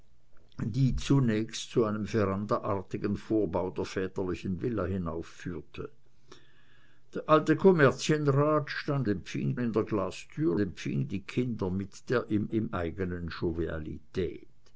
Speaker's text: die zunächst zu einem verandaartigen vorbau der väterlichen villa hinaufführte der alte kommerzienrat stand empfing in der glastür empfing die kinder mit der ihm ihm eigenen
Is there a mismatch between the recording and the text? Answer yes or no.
no